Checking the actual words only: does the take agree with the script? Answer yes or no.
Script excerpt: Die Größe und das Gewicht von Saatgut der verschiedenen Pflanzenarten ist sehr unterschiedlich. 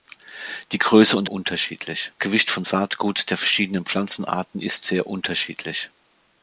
no